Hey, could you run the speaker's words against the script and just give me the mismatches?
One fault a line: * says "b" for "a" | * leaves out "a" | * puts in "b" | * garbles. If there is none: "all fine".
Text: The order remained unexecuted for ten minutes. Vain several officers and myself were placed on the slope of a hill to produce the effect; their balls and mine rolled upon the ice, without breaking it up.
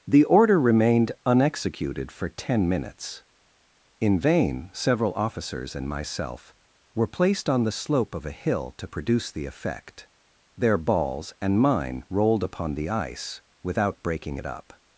* puts in "In"